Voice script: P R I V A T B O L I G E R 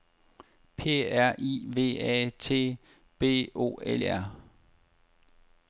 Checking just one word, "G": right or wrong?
wrong